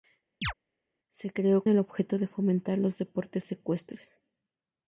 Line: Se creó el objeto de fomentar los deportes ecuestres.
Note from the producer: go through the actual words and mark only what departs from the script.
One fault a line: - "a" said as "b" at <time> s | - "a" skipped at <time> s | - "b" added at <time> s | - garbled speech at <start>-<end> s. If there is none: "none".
none